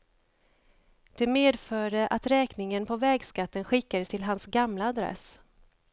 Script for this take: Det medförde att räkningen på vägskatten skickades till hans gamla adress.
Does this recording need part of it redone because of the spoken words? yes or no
no